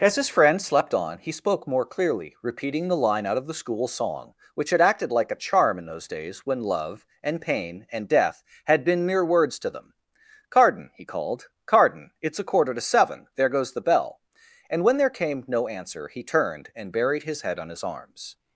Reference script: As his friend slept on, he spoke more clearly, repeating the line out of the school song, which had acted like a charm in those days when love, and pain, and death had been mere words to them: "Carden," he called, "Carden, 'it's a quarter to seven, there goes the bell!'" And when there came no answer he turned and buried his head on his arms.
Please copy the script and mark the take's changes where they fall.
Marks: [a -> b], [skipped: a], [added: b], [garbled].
As his friend slept on, he spoke more clearly, repeating the line out of the school song, which had acted like a charm in those days when love, and pain, and death had been mere words to them: "Carden," he called, "Carden, 'it's a quarter to seven, there goes the bell!'" And when there came no answer he turned and buried his head on his arms.